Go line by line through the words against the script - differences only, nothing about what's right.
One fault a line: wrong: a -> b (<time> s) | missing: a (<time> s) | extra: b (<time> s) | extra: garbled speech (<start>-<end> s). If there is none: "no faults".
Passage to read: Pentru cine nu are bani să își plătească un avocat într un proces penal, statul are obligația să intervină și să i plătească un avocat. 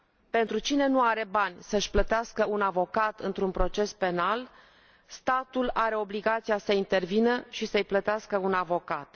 no faults